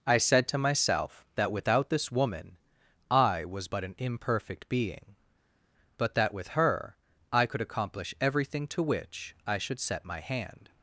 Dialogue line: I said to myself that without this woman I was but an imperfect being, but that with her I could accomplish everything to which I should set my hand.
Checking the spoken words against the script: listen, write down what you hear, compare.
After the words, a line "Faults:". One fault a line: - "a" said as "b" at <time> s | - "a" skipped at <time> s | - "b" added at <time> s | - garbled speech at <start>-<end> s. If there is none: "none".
I said to myself that without this woman I was but an imperfect being, but that with her I could accomplish everything to which I should set my hand.
Faults:
none